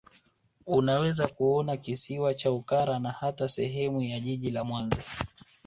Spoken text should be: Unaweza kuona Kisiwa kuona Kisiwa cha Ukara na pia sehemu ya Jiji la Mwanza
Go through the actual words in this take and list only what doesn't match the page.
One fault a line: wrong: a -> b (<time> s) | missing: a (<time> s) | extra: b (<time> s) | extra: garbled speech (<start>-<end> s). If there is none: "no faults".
missing: kuona Kisiwa (2.3 s)
wrong: pia -> hata (3.1 s)